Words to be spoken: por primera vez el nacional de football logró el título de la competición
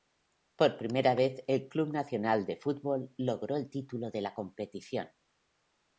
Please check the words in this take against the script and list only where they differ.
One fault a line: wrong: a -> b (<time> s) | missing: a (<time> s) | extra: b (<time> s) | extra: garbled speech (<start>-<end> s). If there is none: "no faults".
extra: club (1.7 s)